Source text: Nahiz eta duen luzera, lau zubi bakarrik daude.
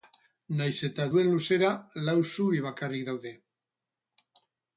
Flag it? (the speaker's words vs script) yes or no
no